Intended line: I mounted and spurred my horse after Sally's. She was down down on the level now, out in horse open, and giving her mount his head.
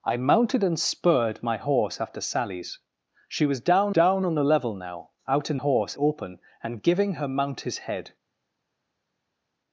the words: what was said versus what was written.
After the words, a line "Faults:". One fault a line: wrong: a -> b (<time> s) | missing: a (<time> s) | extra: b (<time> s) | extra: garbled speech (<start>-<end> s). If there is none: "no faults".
I mounted and spurred my horse after Sally's. She was down down on the level now, out in horse open, and giving her mount his head.
Faults:
no faults